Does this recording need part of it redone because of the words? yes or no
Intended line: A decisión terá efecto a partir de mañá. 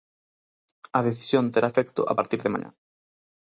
no